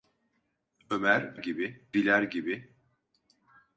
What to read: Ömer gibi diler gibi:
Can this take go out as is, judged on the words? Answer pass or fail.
pass